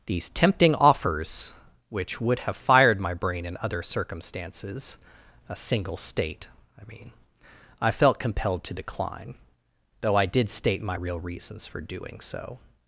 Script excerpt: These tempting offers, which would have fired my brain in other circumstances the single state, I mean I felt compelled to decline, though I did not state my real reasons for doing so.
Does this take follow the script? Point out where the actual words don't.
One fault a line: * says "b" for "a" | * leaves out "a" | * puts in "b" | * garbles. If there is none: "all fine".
* says "a" for "the"
* leaves out "not"